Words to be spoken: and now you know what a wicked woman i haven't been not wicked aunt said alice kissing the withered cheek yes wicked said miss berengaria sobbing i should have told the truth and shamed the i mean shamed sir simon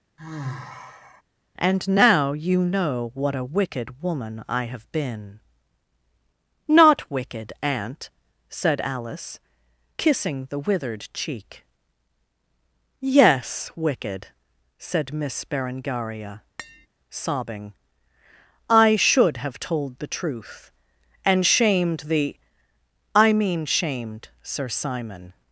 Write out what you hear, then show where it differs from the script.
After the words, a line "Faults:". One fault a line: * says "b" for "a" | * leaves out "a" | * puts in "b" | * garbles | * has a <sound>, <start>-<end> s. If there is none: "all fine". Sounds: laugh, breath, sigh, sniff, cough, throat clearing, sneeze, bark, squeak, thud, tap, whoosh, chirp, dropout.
and now you know what a wicked woman i have been not wicked aunt said alice kissing the withered cheek yes wicked said miss berengaria sobbing i should have told the truth and shamed the i mean shamed sir simon
Faults:
* has a sigh, 0.2-1.2 s
* says "have" for "haven't"
* has a tap, 16.6-16.9 s